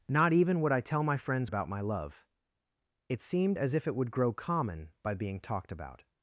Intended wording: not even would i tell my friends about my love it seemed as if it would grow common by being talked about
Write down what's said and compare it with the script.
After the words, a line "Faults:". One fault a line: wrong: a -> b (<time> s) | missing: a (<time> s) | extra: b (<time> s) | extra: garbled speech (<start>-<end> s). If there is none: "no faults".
not even would i tell my friends about my love it seemed as if it would grow common by being talked about
Faults:
no faults